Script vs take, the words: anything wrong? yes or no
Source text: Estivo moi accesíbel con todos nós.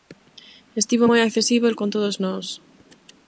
no